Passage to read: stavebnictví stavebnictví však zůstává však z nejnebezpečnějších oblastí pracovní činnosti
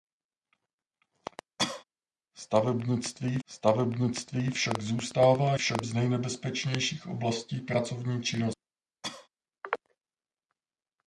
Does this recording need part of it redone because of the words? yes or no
no